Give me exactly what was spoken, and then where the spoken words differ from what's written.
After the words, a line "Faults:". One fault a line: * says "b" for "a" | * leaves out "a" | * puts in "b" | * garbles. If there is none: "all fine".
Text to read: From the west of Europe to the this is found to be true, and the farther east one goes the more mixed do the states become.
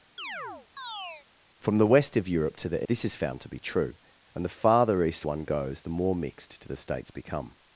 From the west of Europe to the this is found to be true, and the farther east one goes the more mixed do the states become.
Faults:
all fine